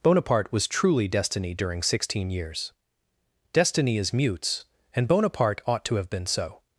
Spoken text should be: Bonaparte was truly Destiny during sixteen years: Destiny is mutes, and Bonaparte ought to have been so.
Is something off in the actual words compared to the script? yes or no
no